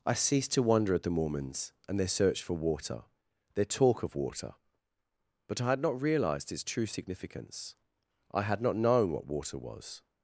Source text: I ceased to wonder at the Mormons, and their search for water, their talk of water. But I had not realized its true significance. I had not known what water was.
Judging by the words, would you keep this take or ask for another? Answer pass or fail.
pass